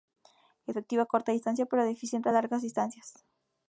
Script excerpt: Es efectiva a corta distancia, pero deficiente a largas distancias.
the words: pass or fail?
pass